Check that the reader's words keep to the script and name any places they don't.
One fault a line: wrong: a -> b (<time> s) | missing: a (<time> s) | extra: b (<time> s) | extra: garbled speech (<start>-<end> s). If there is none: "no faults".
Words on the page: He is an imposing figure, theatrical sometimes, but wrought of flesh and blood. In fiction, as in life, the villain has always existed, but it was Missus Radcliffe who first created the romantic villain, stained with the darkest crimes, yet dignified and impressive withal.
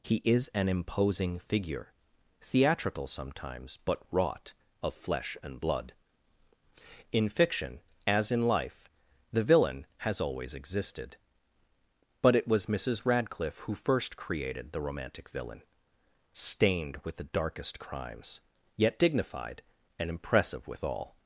no faults